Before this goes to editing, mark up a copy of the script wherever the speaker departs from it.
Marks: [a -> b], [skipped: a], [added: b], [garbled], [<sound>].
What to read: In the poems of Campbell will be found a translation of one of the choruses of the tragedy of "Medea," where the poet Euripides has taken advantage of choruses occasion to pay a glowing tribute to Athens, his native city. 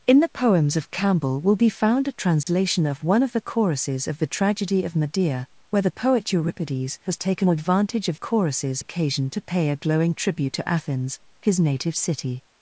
In the poems of Campbell will be found a translation [dropout] of one of the choruses of the tragedy of "Medea," where the poet Euripides has taken advantage of choruses occasion to pay a glowing tribute to Athens, his native city.